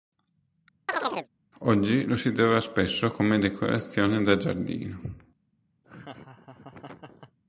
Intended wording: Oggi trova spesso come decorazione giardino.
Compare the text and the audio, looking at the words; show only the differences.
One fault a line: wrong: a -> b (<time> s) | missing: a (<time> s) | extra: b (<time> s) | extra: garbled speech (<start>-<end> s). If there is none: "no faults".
extra: lo si (2.1 s)
extra: da (4.2 s)